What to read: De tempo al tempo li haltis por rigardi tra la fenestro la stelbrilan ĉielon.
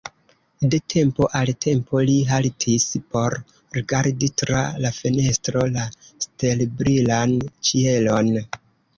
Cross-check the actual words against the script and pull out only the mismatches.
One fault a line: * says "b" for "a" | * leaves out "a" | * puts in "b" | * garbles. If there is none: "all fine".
all fine